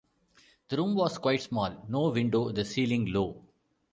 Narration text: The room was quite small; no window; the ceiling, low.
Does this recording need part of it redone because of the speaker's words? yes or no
no